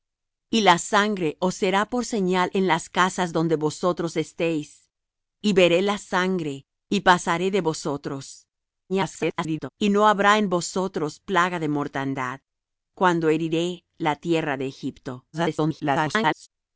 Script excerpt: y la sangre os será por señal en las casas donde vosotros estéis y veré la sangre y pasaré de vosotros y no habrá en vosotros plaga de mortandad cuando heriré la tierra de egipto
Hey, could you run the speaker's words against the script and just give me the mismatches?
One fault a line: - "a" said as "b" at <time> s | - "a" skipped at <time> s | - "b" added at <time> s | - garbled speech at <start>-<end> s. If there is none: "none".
- garbled speech at 8.9-9.7 s
- garbled speech at 15.3-16.5 s